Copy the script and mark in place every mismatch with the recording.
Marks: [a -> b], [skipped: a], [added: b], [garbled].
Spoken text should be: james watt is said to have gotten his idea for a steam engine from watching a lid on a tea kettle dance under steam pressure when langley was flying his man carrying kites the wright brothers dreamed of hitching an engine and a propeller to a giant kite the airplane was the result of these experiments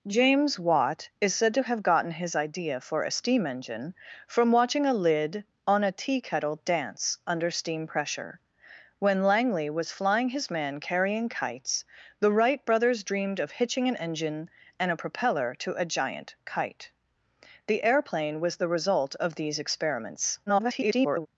james watt is said to have gotten his idea for a steam engine from watching a lid on a tea kettle dance under steam pressure when langley was flying his man carrying kites the wright brothers dreamed of hitching an engine and a propeller to a giant kite the airplane was the result of these experiments [garbled]